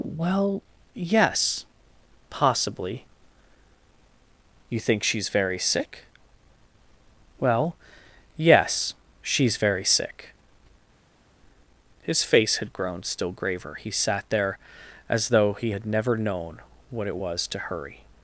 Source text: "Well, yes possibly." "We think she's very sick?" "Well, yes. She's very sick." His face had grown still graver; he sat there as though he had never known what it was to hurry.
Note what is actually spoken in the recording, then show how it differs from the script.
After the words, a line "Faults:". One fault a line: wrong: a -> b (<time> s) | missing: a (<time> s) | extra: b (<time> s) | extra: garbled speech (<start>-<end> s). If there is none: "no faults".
"Well, yes possibly." "You think she's very sick?" "Well, yes. She's very sick." His face had grown still graver; he sat there as though he had never known what it was to hurry.
Faults:
wrong: We -> You (4.7 s)